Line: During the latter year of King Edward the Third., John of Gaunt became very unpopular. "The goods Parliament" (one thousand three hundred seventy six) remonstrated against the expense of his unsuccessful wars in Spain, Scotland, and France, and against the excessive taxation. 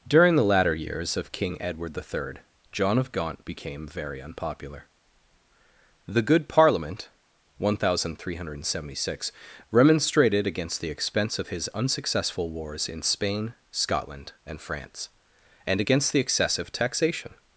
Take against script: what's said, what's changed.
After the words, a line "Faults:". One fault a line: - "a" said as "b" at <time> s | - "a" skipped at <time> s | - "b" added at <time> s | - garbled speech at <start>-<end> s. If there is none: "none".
During the latter years of King Edward the Third., John of Gaunt became very unpopular. "The good Parliament" (one thousand three hundred seventy six) remonstrated against the expense of his unsuccessful wars in Spain, Scotland, and France, and against the excessive taxation.
Faults:
- "year" said as "years" at 0.8 s
- "goods" said as "good" at 6.2 s